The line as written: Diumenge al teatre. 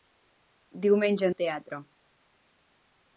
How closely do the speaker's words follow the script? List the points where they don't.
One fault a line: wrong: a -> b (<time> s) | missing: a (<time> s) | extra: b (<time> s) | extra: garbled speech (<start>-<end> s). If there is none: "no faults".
no faults